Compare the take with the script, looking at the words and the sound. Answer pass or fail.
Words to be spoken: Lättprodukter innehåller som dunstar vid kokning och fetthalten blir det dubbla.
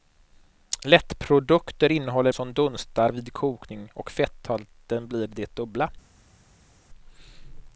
pass